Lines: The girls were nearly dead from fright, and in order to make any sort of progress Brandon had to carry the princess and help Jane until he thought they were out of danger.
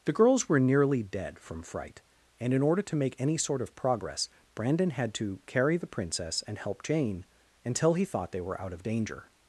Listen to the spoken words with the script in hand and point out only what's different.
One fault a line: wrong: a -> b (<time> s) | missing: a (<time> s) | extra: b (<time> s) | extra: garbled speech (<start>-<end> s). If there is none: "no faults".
no faults